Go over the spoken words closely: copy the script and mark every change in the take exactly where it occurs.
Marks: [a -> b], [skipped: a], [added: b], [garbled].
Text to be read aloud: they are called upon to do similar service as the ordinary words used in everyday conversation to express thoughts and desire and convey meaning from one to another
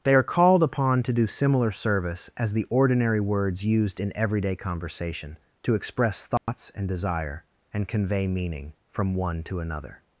they are called upon to do similar service as the ordinary words used in everyday conversation to express thoughts and desire and convey meaning from one to another